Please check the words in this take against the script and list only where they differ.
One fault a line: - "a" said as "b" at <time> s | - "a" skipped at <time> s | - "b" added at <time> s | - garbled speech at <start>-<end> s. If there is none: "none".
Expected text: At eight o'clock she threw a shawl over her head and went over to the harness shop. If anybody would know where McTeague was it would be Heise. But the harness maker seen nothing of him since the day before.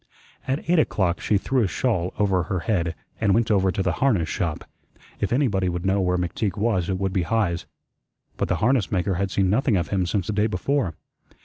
- "had" added at 9.1 s